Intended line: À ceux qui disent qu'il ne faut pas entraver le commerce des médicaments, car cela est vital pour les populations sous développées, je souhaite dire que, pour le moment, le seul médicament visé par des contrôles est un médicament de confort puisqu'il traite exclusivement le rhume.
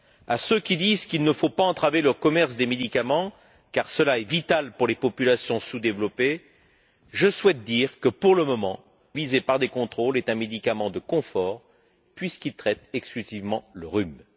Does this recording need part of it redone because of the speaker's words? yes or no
yes